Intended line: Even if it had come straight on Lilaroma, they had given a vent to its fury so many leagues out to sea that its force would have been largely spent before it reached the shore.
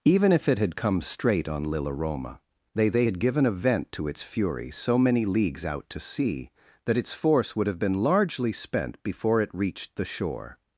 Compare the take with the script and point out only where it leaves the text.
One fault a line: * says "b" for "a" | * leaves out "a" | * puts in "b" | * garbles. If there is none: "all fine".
* puts in "they"